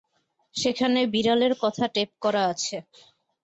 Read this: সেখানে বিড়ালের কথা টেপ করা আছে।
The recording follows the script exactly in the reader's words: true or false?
true